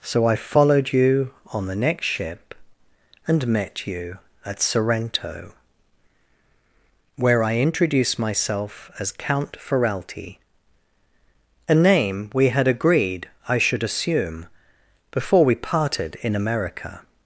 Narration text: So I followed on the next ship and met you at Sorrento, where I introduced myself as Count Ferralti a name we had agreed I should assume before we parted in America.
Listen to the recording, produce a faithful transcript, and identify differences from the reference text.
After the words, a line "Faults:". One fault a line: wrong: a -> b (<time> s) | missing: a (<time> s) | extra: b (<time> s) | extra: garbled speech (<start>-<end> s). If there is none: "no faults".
So I followed you on the next ship and met you at Sorrento, where I introduced myself as Count Ferralti a name we had agreed I should assume before we parted in America.
Faults:
extra: you (0.9 s)